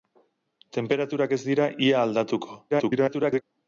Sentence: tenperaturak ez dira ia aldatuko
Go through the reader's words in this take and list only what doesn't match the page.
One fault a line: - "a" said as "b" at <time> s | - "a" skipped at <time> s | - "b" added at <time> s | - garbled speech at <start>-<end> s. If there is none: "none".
- garbled speech at 2.7-3.4 s